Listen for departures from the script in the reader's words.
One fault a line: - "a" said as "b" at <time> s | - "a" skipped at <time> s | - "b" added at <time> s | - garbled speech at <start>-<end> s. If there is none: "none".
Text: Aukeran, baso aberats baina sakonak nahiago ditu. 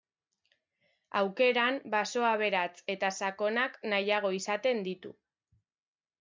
- "baina" said as "eta" at 3.0 s
- "izaten" added at 4.4 s